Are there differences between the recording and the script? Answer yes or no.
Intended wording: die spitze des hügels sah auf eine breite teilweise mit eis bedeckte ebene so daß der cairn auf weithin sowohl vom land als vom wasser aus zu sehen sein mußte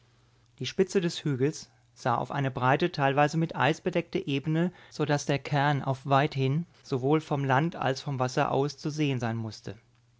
no